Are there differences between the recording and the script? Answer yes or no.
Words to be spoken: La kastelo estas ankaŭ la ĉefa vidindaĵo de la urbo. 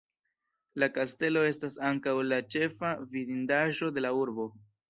no